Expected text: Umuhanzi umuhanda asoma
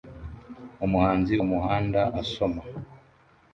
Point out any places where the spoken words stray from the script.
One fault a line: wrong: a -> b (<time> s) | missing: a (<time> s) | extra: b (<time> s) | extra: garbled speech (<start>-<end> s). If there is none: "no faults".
no faults